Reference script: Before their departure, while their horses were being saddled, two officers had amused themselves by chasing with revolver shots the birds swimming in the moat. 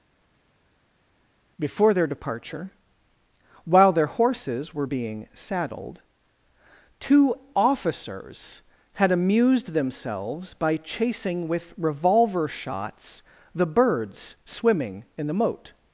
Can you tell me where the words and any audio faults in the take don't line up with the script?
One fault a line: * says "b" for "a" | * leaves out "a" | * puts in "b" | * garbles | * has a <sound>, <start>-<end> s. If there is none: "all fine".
all fine